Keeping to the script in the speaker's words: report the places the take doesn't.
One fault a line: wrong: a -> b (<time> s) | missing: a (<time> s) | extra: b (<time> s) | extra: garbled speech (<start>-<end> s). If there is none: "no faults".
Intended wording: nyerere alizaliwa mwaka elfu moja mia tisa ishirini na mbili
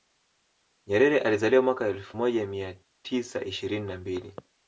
no faults